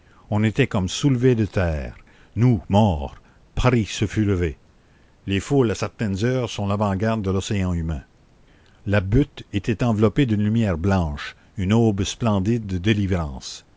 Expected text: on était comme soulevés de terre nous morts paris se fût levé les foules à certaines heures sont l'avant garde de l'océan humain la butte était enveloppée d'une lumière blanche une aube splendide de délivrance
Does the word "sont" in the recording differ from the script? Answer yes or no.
no